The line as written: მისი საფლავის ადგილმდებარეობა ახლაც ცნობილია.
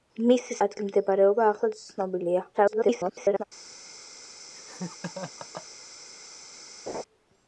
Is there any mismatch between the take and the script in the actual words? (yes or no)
yes